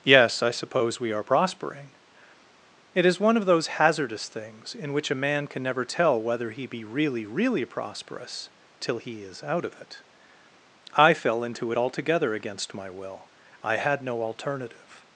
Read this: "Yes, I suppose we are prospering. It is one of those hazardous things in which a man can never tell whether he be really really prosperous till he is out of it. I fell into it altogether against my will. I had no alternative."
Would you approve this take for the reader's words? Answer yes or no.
yes